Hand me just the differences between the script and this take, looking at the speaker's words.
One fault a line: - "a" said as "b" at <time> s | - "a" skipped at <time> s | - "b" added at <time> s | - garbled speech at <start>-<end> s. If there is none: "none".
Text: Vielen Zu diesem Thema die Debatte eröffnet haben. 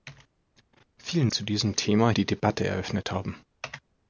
none